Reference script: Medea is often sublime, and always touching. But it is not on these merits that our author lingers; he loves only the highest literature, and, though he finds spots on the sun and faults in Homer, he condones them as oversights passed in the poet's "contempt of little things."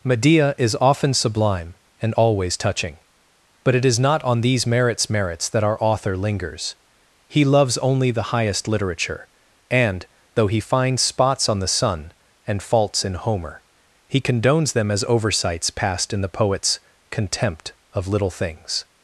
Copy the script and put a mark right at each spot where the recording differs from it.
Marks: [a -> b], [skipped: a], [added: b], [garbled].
Medea is often sublime, and always touching. But it is not on these merits [added: merits] that our author lingers; he loves only the highest literature, and, though he finds spots on the sun and faults in Homer, he condones them as oversights passed in the poet's "contempt of little things."